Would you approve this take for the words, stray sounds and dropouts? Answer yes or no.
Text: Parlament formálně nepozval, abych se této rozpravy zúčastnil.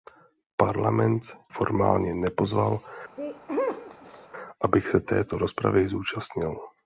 no